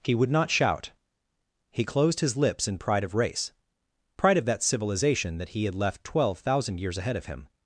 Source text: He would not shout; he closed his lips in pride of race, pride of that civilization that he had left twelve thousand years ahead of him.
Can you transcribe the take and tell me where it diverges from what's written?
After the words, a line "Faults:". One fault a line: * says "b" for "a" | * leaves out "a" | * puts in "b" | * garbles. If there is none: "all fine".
He would not shout; he closed his lips in pride of race, pride of that civilization that he had left twelve thousand years ahead of him.
Faults:
all fine